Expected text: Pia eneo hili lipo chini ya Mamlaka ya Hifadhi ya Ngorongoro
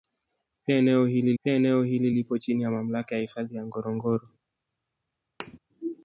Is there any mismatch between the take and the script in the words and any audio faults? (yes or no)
yes